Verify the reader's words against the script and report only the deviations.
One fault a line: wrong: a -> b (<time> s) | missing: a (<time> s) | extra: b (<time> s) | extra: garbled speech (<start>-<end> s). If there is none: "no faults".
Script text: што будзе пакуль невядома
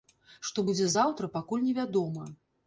extra: заўтра (0.9 s)